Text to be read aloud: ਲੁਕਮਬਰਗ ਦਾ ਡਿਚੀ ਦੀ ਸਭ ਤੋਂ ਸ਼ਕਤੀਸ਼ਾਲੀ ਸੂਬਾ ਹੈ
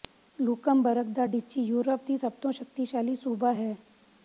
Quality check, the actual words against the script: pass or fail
fail